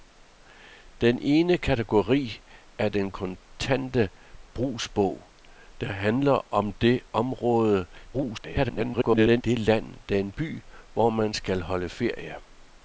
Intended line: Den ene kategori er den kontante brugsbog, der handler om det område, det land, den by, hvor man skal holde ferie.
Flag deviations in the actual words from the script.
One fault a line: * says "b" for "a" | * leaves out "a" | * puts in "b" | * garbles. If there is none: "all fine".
* garbles